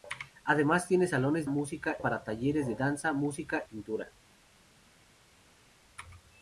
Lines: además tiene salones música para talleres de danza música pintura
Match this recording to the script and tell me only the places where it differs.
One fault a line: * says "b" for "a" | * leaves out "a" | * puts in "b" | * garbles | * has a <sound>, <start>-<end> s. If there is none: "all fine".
all fine